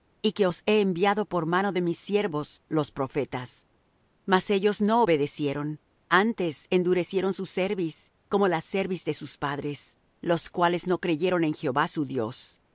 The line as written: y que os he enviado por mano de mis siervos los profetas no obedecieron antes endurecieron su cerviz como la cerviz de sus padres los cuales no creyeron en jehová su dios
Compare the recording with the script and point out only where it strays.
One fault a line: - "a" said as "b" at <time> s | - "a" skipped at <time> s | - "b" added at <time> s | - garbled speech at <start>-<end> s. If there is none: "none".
- "mas ellos" added at 4.3 s